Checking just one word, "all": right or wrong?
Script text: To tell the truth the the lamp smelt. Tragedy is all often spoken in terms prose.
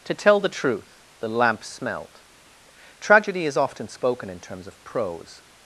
wrong